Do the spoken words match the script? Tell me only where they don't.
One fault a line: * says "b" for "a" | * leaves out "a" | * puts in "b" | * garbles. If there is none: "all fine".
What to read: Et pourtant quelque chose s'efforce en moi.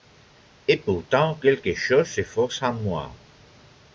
all fine